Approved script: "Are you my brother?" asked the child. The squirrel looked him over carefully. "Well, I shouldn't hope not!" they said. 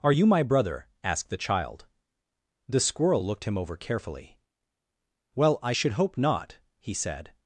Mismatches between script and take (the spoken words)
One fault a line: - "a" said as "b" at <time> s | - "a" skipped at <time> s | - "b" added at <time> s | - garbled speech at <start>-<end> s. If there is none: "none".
- "shouldn't" said as "should" at 5.7 s
- "they" said as "he" at 6.8 s